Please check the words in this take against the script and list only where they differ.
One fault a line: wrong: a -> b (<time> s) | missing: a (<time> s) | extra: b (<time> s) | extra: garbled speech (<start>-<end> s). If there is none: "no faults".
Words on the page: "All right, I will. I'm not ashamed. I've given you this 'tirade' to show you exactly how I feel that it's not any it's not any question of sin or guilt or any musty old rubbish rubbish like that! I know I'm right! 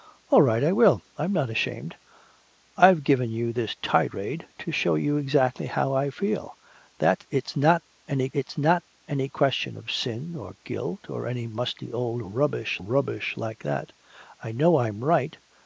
no faults